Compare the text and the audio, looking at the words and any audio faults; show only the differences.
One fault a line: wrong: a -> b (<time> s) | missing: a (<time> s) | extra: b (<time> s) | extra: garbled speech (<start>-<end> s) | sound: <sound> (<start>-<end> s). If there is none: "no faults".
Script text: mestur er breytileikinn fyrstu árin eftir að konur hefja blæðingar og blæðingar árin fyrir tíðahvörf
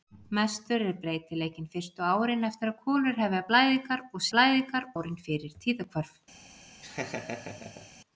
sound: laugh (6.8-7.9 s)